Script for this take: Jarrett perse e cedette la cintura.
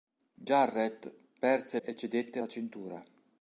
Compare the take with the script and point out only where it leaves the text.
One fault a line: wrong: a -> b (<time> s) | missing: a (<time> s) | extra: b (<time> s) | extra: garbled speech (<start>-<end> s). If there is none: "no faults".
no faults